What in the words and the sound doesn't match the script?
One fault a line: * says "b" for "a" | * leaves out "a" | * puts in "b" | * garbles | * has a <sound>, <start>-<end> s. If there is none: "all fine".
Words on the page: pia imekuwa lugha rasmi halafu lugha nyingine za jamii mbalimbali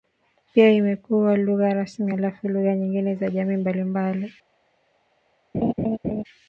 * has a laugh, 5.5-6.2 s